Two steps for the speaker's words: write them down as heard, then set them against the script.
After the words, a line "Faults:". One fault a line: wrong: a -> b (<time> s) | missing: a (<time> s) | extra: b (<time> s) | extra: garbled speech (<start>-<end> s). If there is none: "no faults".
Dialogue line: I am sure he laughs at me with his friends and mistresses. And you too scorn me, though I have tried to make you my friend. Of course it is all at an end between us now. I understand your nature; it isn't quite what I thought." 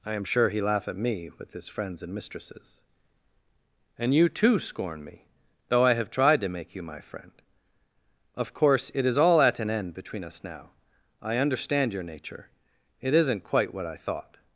I am sure he laugh at me with his friends and mistresses. And you too scorn me, though I have tried to make you my friend. Of course it is all at an end between us now. I understand your nature; it isn't quite what I thought."
Faults:
wrong: laughs -> laugh (0.6 s)